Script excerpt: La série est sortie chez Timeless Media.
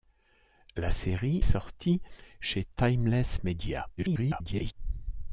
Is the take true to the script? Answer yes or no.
no